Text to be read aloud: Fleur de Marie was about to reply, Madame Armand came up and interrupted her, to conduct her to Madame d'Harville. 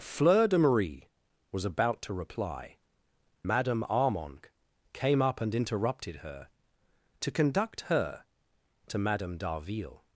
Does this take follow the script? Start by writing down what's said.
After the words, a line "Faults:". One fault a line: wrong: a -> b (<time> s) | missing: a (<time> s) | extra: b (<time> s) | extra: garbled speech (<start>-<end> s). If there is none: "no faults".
Fleur de Marie was about to reply, Madame Armand came up and interrupted her, to conduct her to Madame d'Harville.
Faults:
no faults